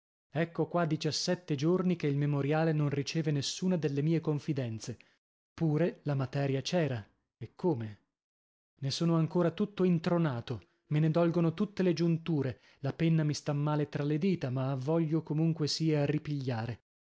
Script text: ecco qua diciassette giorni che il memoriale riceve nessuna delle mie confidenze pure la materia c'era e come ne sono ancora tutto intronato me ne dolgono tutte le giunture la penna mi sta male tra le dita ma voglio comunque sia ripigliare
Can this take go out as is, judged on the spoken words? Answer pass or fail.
fail